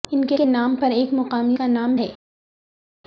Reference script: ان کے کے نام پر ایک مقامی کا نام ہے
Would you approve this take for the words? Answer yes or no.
yes